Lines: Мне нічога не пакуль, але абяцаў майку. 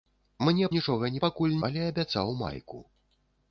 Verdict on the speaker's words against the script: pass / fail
pass